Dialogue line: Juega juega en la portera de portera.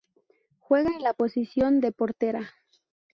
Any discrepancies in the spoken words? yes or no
yes